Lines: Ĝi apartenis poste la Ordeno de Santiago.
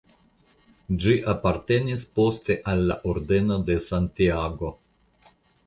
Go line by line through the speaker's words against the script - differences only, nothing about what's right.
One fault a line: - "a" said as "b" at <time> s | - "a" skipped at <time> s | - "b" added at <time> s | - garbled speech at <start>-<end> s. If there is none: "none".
- "al" added at 2.7 s